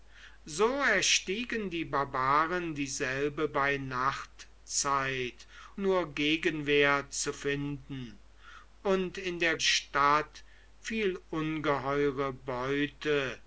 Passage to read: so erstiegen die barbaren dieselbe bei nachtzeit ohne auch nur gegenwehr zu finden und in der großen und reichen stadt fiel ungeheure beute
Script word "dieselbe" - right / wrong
right